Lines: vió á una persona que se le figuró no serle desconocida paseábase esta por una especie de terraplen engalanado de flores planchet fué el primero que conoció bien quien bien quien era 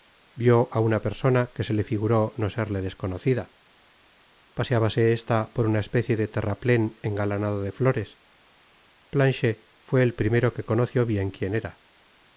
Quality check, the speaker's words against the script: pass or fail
fail